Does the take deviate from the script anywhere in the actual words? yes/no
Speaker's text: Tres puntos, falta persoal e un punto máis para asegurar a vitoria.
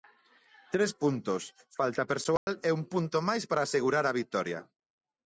no